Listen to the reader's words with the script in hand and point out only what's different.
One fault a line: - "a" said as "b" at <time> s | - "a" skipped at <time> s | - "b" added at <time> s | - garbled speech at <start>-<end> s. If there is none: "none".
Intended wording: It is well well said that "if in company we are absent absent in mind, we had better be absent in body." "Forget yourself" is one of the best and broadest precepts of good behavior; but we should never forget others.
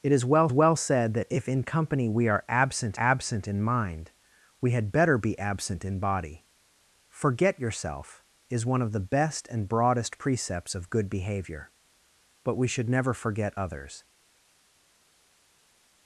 none